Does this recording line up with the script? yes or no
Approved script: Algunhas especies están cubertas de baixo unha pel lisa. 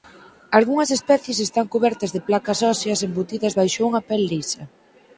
no